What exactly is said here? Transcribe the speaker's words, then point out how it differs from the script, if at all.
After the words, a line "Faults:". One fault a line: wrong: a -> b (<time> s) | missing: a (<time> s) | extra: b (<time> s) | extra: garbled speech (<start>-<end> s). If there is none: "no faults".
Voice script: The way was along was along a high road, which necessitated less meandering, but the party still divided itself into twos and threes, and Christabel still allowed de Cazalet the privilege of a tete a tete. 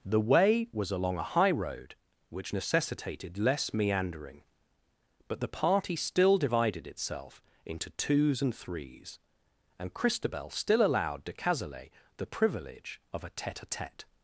The way was along a high road, which necessitated less meandering, but the party still divided itself into twos and threes, and Christabel still allowed de Cazalet the privilege of a tete a tete.
Faults:
missing: was along (1.2 s)